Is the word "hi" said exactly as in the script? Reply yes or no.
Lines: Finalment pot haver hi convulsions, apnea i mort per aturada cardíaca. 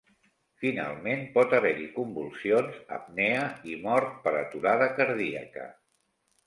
yes